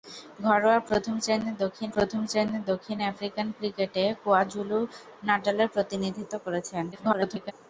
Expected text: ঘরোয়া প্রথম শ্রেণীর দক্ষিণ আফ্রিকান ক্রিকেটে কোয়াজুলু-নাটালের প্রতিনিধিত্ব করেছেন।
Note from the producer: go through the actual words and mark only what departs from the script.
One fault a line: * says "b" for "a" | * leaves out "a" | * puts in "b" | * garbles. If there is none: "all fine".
* puts in "প্রথম শ্রেণীর দক্ষিণ"
* garbles